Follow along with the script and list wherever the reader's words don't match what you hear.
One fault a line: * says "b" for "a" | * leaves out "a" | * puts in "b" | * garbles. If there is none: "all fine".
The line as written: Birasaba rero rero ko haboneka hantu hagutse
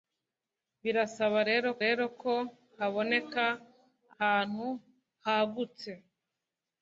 all fine